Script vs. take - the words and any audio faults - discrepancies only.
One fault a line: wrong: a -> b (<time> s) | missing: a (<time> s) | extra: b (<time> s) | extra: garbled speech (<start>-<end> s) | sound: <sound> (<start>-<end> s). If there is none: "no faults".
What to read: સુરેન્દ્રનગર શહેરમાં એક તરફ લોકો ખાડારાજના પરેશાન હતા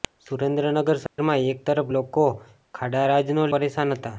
sound: dropout (1.1-1.2 s)